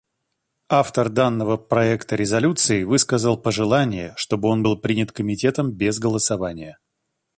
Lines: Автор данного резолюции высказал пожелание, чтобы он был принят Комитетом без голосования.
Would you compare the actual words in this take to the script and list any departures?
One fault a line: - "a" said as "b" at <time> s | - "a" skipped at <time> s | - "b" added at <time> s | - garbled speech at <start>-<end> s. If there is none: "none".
- "проекта" added at 1.6 s